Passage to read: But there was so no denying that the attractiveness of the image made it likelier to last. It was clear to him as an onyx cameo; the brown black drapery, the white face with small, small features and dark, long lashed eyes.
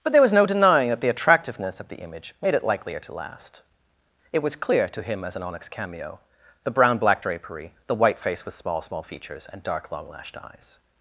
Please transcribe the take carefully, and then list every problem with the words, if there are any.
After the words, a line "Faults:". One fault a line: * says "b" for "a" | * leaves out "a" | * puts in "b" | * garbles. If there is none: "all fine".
But there was no denying that the attractiveness of the image made it likelier to last. It was clear to him as an onyx cameo; the brown black drapery, the white face with small, small features and dark, long lashed eyes.
Faults:
* leaves out "so"